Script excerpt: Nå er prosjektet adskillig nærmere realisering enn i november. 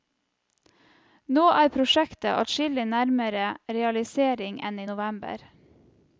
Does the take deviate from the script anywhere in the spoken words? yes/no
no